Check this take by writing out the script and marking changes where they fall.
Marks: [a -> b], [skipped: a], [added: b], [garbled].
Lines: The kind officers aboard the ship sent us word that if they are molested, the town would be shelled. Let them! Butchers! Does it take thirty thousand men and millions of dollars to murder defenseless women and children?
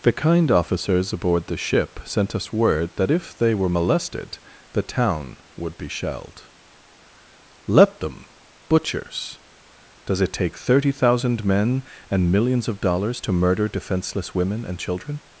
The kind officers aboard the ship sent us word that if they [are -> were] molested, the town would be shelled. Let them! Butchers! Does it take thirty thousand men and millions of dollars to murder defenseless women and children?